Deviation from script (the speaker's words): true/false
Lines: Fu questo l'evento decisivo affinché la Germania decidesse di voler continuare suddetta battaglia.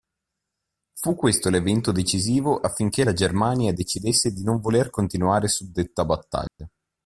true